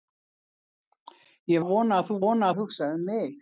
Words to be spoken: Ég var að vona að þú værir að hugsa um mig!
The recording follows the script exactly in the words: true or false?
false